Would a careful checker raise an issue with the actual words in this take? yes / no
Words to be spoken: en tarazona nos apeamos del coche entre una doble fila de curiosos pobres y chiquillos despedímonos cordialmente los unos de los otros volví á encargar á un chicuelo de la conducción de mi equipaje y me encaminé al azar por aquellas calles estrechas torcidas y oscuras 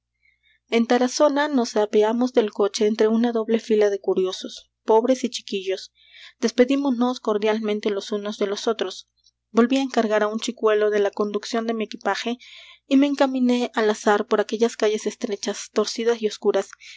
no